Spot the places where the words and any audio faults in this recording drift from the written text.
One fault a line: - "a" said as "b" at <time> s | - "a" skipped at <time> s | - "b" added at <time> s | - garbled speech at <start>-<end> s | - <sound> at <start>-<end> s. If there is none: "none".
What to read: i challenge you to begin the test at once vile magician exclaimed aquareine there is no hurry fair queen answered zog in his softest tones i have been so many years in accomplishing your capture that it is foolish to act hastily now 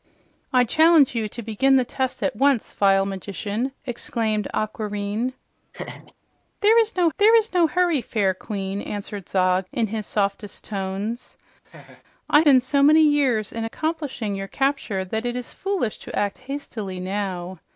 - laugh at 5.7-6.1 s
- "there is no" added at 7.2 s
- laugh at 11.6-12.0 s
- "have" skipped at 12.4 s